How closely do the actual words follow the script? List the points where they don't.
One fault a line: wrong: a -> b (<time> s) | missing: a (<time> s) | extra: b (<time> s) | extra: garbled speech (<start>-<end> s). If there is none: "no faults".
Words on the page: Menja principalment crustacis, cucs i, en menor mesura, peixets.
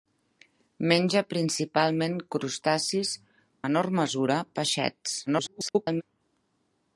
missing: cucs i en (3.1 s)
extra: garbled speech (5.3-6.0 s)